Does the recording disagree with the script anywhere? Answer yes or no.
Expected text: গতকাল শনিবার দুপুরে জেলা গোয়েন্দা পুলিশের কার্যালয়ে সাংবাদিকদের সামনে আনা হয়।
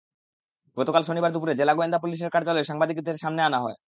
no